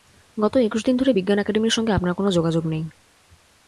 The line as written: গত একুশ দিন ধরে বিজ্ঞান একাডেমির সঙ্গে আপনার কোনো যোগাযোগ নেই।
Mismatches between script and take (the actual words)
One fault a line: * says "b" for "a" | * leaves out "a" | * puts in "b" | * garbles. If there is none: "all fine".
all fine